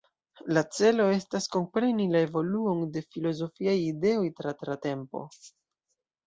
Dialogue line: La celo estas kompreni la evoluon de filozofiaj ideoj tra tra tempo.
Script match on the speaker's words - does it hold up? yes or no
yes